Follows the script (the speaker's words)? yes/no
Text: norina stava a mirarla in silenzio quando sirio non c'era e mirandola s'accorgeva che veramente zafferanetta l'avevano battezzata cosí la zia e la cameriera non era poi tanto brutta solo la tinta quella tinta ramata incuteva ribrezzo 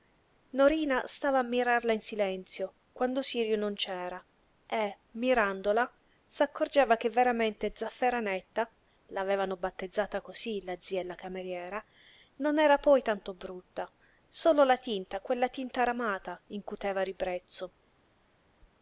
yes